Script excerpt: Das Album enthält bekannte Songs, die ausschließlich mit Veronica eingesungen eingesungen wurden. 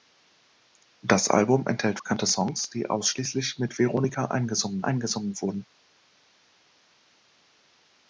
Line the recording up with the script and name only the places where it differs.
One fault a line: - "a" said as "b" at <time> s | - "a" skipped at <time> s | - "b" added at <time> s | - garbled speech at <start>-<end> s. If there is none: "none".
none